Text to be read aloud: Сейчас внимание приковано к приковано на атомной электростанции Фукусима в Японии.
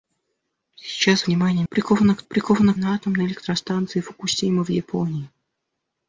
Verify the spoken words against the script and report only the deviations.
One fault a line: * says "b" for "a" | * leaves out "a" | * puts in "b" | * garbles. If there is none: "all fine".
all fine